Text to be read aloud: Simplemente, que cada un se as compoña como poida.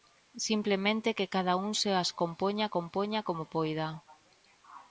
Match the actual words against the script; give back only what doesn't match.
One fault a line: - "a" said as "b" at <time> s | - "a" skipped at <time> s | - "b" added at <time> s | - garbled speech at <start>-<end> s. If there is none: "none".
- "compoña" added at 2.8 s